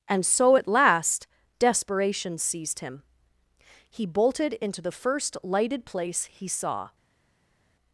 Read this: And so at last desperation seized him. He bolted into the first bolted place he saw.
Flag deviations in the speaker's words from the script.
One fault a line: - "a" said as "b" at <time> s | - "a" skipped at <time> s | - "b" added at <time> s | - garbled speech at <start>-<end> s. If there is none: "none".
- "bolted" said as "lighted" at 5.4 s